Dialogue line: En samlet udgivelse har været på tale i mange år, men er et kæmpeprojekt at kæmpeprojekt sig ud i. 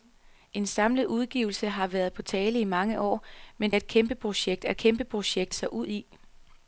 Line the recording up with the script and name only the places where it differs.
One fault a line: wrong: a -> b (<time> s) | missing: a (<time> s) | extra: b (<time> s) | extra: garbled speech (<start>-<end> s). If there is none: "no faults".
no faults